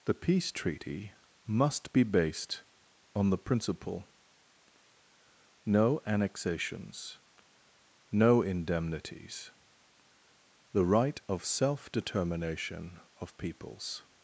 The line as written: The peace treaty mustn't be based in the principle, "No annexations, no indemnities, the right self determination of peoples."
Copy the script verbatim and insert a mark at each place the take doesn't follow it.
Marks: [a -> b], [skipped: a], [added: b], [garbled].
The peace treaty [mustn't -> must] be based [in -> on] the principle, "No annexations, no indemnities, the right [added: of] self determination of peoples."